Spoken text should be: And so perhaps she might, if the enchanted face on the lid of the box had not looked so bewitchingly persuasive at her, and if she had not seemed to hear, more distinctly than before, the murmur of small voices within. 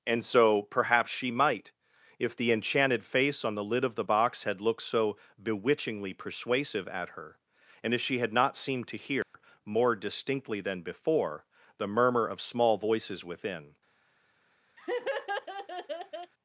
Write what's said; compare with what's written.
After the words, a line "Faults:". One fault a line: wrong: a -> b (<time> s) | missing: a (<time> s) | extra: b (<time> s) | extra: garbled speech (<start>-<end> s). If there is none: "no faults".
And so perhaps she might, if the enchanted face on the lid of the box had looked so bewitchingly persuasive at her, and if she had not seemed to hear, more distinctly than before, the murmur of small voices within.
Faults:
missing: not (4.6 s)